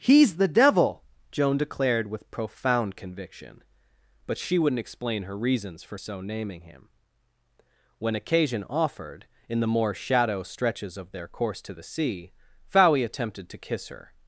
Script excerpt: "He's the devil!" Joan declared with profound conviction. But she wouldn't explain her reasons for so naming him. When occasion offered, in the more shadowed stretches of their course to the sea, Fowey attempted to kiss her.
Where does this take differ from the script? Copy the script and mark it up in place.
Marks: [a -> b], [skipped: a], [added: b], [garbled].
"He's the devil!" Joan declared with profound conviction. But she wouldn't explain her reasons for so naming him. When occasion offered, in the more [shadowed -> shadow] stretches of their course to the sea, Fowey attempted to kiss her.